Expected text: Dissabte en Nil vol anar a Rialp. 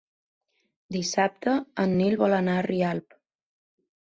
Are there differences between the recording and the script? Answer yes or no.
no